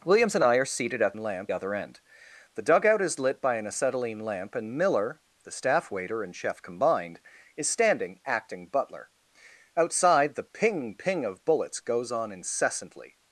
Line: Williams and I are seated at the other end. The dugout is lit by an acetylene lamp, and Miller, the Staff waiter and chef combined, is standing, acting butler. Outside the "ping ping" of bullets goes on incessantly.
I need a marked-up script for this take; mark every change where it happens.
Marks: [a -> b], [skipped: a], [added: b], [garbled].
Williams and I are seated at [the -> lamp] other end. The dugout is lit by an acetylene lamp, and Miller, the Staff waiter and chef combined, is standing, acting butler. Outside the "ping ping" of bullets goes on incessantly.